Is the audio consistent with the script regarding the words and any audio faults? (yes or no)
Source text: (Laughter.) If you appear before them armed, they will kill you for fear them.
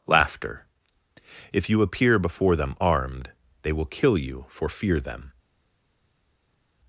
yes